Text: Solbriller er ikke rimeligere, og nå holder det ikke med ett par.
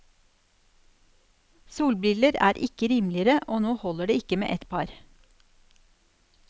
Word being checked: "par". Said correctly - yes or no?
yes